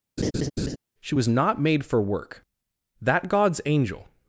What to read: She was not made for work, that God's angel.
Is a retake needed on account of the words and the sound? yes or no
yes